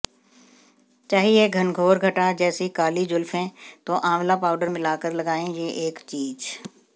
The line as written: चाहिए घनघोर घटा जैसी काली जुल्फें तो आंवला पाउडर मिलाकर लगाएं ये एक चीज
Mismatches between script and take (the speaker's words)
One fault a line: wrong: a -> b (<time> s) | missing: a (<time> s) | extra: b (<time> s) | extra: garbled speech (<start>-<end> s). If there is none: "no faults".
no faults